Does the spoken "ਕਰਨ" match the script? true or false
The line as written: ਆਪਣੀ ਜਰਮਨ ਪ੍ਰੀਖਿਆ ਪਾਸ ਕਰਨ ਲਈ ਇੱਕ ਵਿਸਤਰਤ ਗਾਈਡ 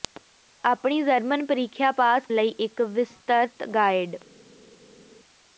false